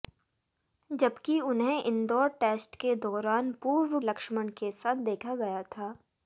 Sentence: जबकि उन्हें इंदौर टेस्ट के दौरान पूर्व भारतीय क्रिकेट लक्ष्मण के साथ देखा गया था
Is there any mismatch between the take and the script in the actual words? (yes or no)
yes